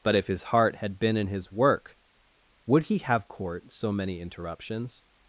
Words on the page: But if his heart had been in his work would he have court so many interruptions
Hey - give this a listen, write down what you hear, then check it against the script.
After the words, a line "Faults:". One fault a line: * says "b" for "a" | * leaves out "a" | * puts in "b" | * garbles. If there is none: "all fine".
But if his heart had been in his work would he have court so many interruptions
Faults:
all fine